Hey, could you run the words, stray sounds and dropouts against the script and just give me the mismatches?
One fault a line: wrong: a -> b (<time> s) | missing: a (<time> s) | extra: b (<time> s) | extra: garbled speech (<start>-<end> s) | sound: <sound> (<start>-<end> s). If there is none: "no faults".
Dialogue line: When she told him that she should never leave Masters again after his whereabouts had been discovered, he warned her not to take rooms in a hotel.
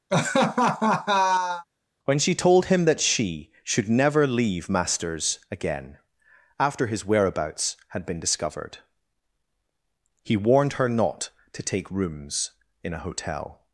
sound: laugh (0.1-1.6 s)